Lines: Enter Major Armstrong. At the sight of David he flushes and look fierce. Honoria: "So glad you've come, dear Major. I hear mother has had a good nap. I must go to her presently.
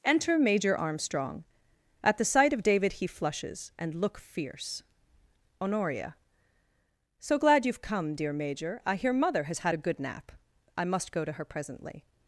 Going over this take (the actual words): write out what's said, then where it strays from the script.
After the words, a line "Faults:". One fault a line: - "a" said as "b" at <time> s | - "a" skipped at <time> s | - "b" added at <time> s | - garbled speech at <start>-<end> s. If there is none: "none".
Enter Major Armstrong. At the sight of David he flushes and look fierce. Honoria: "So glad you've come, dear Major. I hear mother has had a good nap. I must go to her presently.
Faults:
none